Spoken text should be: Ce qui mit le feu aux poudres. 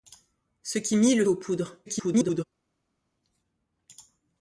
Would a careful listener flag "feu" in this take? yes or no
yes